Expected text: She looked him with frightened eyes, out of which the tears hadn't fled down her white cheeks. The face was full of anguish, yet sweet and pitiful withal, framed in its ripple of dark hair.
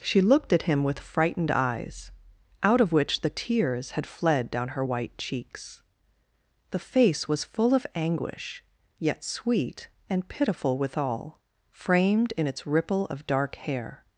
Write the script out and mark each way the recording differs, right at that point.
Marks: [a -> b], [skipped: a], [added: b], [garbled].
She looked [added: at] him with frightened eyes, out of which the tears [hadn't -> had] fled down her white cheeks. The face was full of anguish, yet sweet and pitiful withal, framed in its ripple of dark hair.